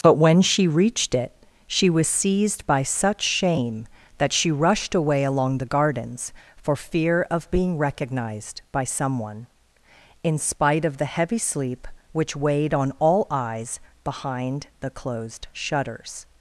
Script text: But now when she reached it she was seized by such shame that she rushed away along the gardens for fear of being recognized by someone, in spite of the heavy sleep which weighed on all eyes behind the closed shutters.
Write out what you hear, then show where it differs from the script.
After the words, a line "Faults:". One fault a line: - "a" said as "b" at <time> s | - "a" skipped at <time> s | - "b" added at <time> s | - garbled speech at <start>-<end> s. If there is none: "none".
But when she reached it she was seized by such shame that she rushed away along the gardens for fear of being recognized by someone, in spite of the heavy sleep which weighed on all eyes behind the closed shutters.
Faults:
- "now" skipped at 0.1 s